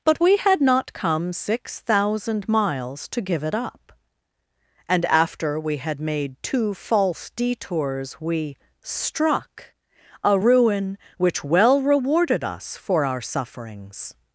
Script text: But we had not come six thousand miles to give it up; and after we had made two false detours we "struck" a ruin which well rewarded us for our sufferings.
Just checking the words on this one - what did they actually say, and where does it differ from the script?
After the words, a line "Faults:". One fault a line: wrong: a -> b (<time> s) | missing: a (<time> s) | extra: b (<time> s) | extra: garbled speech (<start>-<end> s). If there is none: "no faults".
But we had not come six thousand miles to give it up; and after we had made two false detours we "struck" a ruin which well rewarded us for our sufferings.
Faults:
no faults